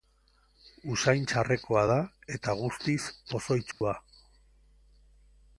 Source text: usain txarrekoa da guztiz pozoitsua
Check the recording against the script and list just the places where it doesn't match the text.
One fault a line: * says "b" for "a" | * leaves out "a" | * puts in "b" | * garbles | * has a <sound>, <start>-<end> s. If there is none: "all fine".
* puts in "eta"
* has a dropout, 3.7-3.8 s